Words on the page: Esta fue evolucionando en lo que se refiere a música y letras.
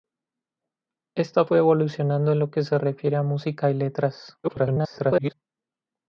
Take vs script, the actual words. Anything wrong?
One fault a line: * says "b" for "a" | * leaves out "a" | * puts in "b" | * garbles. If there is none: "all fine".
* garbles